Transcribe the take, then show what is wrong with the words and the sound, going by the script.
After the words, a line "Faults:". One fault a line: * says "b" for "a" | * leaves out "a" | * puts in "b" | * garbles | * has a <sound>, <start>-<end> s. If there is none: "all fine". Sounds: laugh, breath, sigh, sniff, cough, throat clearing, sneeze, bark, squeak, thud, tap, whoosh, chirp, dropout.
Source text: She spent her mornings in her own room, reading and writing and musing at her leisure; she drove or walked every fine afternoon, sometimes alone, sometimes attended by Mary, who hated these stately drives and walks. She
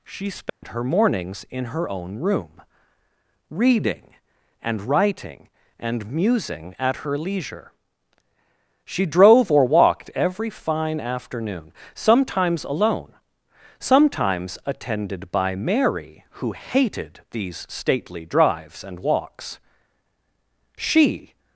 She spent her mornings in her own room, reading and writing and musing at her leisure; she drove or walked every fine afternoon, sometimes alone, sometimes attended by Mary, who hated these stately drives and walks. She
Faults:
* has a dropout, 0.5-0.6 s